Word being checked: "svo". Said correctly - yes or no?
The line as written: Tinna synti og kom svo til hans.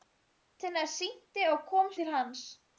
no